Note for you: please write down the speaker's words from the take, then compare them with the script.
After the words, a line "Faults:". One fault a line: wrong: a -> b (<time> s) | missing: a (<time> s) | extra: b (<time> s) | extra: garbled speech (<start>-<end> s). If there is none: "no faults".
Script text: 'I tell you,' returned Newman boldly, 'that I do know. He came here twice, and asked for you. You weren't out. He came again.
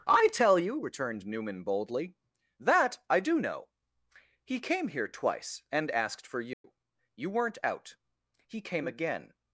'I tell you,' returned Newman boldly, 'that I do know. He came here twice, and asked for you. You weren't out. He came again.
Faults:
no faults